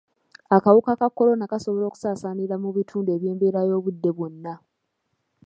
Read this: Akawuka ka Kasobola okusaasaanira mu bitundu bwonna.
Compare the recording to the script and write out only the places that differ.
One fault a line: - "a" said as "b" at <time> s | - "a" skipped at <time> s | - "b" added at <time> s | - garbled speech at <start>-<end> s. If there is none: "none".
- "Kolona" added at 1.2 s
- "eby'embeera y'obudde" added at 3.2 s